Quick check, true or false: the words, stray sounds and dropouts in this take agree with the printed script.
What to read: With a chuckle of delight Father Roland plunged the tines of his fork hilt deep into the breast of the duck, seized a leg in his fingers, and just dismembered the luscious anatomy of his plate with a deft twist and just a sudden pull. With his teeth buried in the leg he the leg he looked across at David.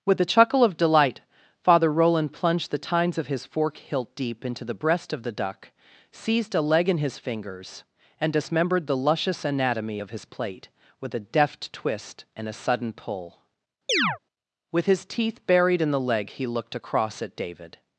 false